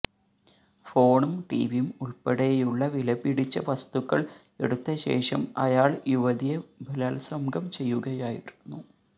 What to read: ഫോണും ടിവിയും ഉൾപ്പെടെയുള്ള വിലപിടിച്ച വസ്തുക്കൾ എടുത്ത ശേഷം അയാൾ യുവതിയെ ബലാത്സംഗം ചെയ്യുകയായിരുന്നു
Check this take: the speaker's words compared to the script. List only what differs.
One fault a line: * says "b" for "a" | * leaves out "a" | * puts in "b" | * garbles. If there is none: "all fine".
all fine